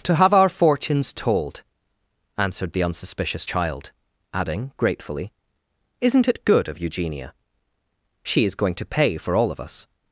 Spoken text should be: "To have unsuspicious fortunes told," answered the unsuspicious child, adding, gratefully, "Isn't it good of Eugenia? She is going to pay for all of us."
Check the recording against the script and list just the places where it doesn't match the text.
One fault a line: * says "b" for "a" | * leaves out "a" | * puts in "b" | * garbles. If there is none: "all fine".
* says "our" for "unsuspicious"